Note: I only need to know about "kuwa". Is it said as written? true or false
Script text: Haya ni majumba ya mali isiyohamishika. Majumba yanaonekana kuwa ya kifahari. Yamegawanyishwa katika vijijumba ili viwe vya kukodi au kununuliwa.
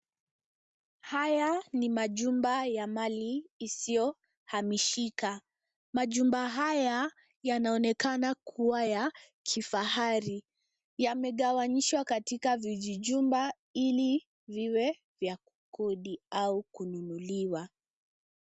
true